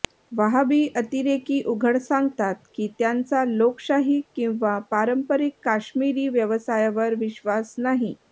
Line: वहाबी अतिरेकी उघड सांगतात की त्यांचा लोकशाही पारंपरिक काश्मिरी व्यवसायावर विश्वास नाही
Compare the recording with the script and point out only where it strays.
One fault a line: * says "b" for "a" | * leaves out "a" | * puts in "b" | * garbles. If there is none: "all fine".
* puts in "किंवा"